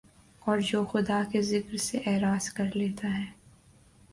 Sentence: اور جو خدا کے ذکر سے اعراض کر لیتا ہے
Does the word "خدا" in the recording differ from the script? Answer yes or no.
no